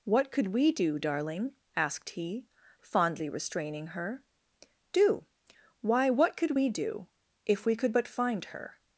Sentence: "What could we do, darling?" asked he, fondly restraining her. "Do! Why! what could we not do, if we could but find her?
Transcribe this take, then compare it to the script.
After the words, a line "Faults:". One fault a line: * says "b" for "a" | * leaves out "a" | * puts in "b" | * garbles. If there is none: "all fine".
"What could we do, darling?" asked he, fondly restraining her. "Do! Why! what could we do, if we could but find her?
Faults:
* leaves out "not"